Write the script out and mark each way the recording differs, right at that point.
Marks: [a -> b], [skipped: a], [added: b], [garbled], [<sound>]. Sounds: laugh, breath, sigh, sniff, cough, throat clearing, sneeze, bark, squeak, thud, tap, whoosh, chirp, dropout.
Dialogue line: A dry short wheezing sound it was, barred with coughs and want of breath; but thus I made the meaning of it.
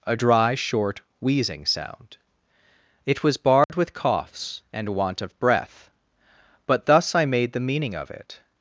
A dry short wheezing sound it was, barred [dropout] with coughs and want of breath; but thus I made the meaning of it.